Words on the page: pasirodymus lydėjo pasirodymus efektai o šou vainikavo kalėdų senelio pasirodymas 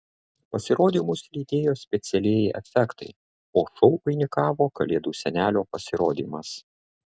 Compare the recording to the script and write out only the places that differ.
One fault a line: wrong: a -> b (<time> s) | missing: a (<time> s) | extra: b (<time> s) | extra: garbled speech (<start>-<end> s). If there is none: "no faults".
wrong: pasirodymus -> specialieji (1.8 s)